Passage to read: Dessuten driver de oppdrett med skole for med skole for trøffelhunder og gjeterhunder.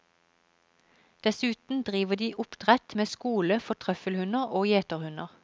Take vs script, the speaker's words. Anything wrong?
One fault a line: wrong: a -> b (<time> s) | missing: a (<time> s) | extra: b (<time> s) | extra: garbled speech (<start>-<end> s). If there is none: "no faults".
missing: med skole for (3.7 s)